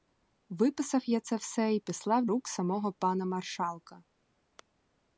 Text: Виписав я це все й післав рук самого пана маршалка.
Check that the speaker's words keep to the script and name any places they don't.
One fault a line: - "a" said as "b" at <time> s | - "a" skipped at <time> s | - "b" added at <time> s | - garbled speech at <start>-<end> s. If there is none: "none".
none